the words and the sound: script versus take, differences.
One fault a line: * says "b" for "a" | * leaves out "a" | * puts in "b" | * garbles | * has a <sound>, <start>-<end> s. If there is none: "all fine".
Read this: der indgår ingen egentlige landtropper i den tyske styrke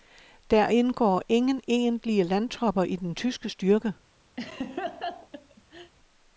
* has a laugh, 4.4-5.9 s